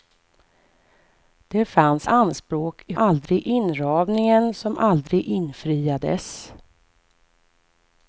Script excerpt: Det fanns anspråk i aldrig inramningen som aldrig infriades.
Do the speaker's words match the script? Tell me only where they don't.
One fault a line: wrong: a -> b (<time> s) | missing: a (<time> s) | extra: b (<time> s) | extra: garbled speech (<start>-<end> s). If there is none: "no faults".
no faults